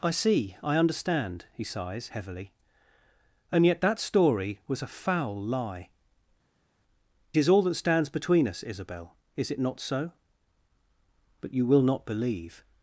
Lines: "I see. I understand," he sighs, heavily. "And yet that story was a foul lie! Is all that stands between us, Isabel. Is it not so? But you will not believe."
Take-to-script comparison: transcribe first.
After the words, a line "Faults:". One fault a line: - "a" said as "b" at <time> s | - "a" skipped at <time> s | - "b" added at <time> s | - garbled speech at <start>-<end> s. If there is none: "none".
"I see. I understand," he sighs, heavily. "And yet that story was a foul lie! Is all that stands between us, Isabel. Is it not so? But you will not believe."
Faults:
none